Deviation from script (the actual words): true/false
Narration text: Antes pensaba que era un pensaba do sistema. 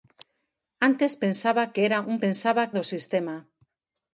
false